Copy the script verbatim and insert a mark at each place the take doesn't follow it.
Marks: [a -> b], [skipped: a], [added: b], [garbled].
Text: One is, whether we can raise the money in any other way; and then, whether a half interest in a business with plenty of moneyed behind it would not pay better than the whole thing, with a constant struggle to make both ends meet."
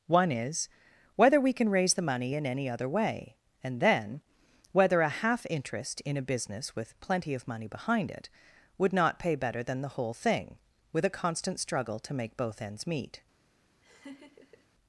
One is, whether we can raise the money in any other way; and then, whether a half interest in a business with plenty of [moneyed -> money] behind it would not pay better than the whole thing, with a constant struggle to make both ends meet."